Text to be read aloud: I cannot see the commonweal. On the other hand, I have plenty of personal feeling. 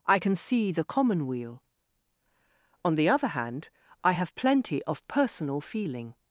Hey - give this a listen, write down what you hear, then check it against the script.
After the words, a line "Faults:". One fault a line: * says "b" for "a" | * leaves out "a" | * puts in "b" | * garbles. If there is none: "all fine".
I can see the commonweal. On the other hand, I have plenty of personal feeling.
Faults:
* says "can" for "cannot"